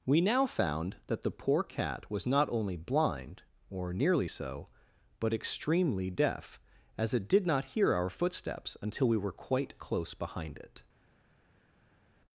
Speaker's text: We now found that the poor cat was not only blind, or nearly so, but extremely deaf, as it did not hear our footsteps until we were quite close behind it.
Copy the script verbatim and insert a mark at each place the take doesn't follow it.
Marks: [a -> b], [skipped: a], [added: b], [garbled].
We now found that the poor cat was not only blind, or nearly so, but extremely deaf, as it did not hear our footsteps until we were quite close behind it.